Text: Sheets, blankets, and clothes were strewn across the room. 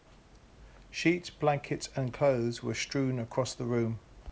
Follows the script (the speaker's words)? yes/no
yes